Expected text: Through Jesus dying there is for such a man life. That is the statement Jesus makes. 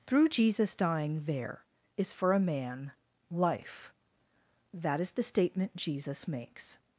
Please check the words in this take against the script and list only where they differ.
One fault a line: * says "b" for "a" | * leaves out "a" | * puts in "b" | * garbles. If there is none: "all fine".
* leaves out "such"